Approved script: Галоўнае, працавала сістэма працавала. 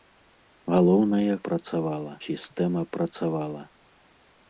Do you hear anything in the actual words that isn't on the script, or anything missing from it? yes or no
no